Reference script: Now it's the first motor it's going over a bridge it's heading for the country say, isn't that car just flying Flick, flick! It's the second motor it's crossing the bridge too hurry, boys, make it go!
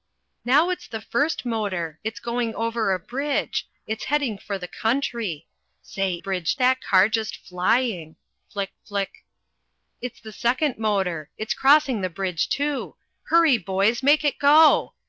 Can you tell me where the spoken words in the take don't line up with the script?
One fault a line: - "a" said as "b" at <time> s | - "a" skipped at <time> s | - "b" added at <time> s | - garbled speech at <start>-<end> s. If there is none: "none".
- "isn't" said as "bridge" at 6.2 s